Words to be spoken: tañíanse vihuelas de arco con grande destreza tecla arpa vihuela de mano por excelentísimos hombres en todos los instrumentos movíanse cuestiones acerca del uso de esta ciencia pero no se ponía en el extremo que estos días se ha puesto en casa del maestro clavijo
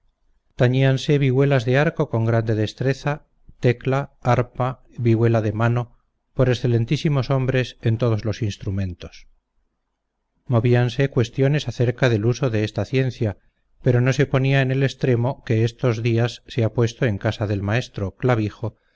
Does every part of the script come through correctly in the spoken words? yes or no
yes